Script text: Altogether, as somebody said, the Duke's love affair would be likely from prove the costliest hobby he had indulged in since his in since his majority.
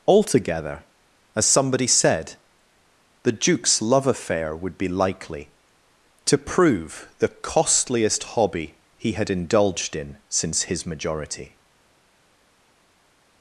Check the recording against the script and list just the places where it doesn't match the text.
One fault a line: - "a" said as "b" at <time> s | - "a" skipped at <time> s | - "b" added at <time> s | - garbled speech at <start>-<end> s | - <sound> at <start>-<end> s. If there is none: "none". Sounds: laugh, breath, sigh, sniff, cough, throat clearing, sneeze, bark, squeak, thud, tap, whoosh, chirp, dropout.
- "from" said as "to" at 6.2 s
- "in since his" skipped at 10.8 s